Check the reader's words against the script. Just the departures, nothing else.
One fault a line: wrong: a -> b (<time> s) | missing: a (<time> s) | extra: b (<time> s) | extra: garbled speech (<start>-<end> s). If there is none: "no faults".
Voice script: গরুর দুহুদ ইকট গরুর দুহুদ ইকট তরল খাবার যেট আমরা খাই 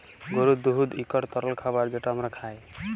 missing: গরুর দুহুদ ইকট (1.2 s)